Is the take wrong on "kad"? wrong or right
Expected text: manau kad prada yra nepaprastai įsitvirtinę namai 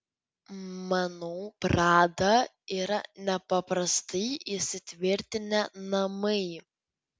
wrong